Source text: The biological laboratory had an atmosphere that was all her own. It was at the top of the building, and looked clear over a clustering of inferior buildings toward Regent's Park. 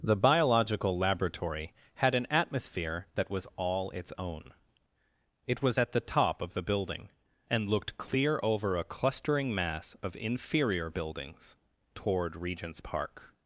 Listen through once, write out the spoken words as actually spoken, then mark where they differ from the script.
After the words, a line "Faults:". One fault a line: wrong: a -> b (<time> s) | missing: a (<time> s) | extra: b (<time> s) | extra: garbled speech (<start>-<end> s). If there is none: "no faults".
The biological laboratory had an atmosphere that was all its own. It was at the top of the building, and looked clear over a clustering mass of inferior buildings toward Regent's Park.
Faults:
wrong: her -> its (3.9 s)
extra: mass (9.5 s)